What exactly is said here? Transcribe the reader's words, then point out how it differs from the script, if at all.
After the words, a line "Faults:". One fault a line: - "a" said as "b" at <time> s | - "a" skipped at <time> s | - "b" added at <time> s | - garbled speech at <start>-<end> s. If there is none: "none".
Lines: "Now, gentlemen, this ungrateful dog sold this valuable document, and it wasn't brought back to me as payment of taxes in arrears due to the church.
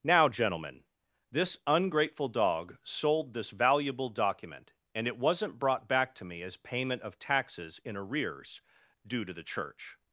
"Now, gentlemen, this ungrateful dog sold this valuable document, and it wasn't brought back to me as payment of taxes in arrears due to the church.
Faults:
none